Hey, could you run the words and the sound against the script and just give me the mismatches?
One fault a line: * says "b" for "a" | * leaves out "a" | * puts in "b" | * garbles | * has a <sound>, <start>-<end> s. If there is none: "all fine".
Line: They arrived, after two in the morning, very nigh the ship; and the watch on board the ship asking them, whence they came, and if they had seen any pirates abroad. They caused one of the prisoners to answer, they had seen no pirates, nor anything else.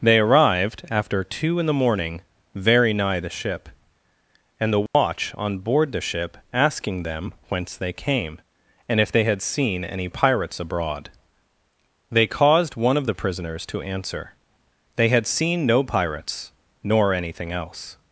* has a dropout, 4.9-4.9 s